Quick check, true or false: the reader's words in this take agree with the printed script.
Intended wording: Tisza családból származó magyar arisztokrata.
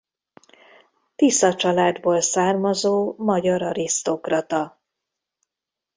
true